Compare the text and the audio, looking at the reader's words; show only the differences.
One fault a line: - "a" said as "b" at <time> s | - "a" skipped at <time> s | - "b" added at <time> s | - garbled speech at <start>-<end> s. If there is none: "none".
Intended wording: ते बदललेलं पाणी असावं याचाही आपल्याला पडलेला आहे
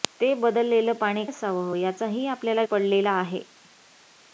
none